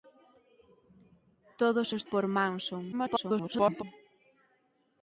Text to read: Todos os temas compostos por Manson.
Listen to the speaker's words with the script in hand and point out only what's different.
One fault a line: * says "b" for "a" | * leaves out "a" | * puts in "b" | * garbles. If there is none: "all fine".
* leaves out "temas compostos"
* garbles